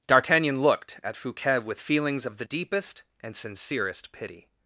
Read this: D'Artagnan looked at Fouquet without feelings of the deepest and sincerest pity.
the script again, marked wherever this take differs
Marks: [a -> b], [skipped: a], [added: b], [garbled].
D'Artagnan looked at Fouquet [without -> with] feelings of the deepest and sincerest pity.